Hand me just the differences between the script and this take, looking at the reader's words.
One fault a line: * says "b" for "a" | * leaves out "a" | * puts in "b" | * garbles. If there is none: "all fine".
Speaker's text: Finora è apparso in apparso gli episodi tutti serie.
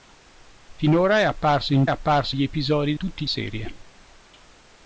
all fine